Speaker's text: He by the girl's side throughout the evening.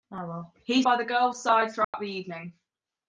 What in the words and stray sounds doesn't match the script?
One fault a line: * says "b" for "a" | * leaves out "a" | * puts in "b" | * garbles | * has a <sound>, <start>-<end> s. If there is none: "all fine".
* has a dropout, 1.8-1.9 s